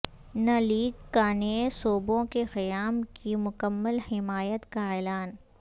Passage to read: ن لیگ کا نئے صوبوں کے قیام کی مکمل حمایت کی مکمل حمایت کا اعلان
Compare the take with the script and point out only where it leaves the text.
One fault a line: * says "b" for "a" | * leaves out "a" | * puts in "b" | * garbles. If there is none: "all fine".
* leaves out "کی مکمل حمایت"